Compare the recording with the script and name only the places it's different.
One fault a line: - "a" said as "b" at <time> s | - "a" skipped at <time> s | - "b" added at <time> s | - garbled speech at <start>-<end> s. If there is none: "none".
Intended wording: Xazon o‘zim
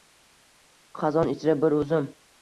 - "ichra bir" added at 1.3 s